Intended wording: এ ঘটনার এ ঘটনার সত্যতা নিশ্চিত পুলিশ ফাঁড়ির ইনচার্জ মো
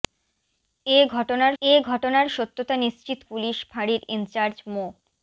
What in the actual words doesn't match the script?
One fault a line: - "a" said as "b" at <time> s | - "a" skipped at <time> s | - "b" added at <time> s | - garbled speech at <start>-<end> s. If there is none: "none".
none